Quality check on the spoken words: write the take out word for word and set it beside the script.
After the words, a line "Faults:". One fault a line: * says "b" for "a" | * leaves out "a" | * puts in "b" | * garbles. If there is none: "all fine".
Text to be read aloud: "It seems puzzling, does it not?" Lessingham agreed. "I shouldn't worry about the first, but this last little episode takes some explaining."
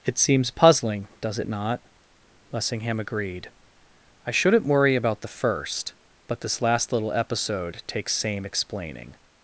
"It seems puzzling, does it not?" Lessingham agreed. "I shouldn't worry about the first, but this last little episode takes same explaining."
Faults:
* says "same" for "some"